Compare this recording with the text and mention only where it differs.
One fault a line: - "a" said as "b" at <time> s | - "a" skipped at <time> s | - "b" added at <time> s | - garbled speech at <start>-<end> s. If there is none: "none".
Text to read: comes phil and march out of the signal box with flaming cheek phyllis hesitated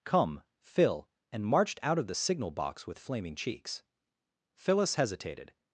- "comes" said as "come" at 0.0 s
- "march" said as "marched" at 1.4 s
- "cheek" said as "cheeks" at 3.3 s